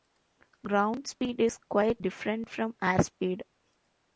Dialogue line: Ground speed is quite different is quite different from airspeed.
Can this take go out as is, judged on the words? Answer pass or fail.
fail